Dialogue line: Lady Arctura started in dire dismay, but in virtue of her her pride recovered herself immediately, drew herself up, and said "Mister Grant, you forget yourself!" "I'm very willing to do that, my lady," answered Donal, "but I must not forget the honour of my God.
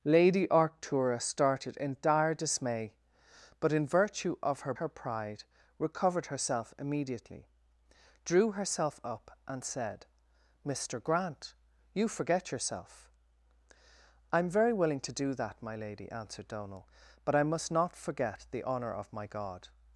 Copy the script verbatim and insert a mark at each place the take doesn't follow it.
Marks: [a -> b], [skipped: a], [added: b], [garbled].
Lady Arctura started in dire dismay, but in virtue of her her pride recovered herself immediately, drew herself up, and said "Mister Grant, you forget yourself!" "I'm very willing to do that, my lady," answered Donal, "but I must not forget the honour of my God.